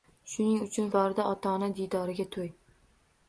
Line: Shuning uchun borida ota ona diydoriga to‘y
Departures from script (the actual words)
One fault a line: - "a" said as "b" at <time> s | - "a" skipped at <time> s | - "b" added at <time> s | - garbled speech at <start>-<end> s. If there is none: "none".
none